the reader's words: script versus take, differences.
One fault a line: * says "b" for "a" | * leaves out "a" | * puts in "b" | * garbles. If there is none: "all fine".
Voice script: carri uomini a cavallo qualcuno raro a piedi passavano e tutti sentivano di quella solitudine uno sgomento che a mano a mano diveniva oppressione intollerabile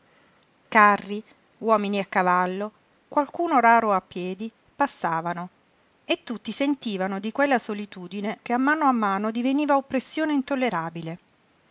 * leaves out "uno sgomento"